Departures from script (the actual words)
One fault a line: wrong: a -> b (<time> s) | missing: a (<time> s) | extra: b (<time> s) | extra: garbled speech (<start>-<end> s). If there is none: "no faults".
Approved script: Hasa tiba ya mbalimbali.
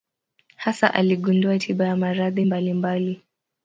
extra: aligundua (0.9 s)
extra: maradhi (2.0 s)